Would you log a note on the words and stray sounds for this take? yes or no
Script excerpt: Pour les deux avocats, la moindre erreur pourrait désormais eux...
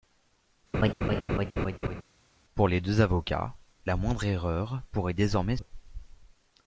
yes